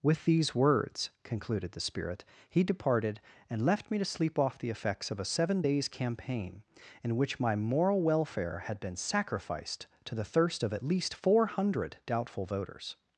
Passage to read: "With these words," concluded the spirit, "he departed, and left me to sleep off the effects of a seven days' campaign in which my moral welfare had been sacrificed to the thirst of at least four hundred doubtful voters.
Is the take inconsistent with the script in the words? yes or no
no